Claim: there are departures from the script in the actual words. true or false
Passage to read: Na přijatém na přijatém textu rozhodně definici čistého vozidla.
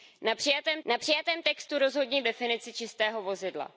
false